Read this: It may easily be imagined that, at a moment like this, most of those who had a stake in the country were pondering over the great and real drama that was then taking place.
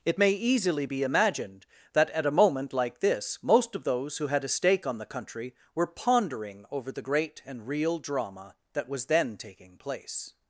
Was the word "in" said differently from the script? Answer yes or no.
yes